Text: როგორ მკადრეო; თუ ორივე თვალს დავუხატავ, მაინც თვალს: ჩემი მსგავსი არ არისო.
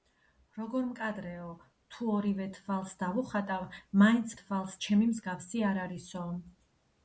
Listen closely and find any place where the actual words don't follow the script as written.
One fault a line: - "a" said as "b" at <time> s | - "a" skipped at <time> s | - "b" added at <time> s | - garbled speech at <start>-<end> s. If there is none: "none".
none